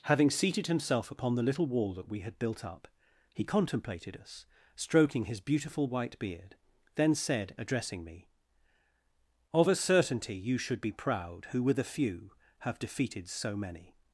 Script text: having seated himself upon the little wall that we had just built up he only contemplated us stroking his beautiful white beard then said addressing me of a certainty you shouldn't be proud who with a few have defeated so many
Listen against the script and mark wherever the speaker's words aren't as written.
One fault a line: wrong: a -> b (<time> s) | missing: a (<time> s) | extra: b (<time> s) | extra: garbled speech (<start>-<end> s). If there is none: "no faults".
missing: just (2.4 s)
missing: only (3.4 s)
wrong: shouldn't -> should (10.6 s)